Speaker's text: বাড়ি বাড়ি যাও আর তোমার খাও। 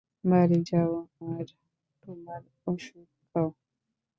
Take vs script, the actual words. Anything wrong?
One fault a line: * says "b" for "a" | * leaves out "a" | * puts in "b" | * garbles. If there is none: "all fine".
* leaves out "বাড়ি"
* puts in "ওষুধ"